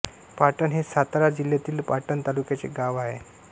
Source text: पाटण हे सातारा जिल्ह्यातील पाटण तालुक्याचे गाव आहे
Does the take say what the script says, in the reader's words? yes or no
yes